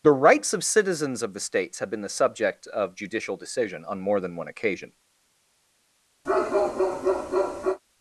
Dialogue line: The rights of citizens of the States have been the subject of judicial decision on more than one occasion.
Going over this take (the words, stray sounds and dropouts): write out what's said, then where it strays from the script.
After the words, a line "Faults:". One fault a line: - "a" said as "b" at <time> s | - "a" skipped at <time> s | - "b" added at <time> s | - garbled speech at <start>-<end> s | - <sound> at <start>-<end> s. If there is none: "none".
The rights of citizens of the States have been the subject of judicial decision on more than one occasion.
Faults:
- bark at 6.2-7.8 s